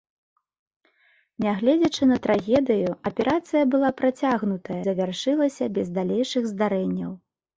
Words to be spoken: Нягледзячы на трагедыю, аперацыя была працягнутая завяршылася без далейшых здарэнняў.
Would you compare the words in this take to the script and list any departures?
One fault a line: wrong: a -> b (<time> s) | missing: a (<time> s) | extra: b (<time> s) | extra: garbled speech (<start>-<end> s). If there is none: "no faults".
no faults